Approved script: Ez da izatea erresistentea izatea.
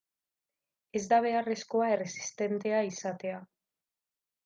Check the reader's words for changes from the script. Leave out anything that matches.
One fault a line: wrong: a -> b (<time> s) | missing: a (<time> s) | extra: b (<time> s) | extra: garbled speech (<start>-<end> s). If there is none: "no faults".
wrong: izatea -> beharrezkoa (1.2 s)